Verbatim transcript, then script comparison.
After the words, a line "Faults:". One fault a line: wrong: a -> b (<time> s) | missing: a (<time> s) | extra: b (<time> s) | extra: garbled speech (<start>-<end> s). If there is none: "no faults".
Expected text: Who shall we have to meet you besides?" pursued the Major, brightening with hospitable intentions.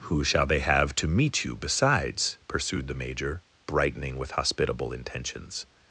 Who shall they have to meet you besides?" pursued the Major, brightening with hospitable intentions.
Faults:
wrong: we -> they (0.5 s)